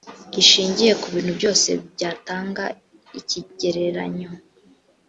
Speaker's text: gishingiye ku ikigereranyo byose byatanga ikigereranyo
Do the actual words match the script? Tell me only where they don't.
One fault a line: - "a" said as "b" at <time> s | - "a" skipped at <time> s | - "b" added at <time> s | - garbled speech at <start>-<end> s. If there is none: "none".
- "ikigereranyo" said as "bintu" at 1.1 s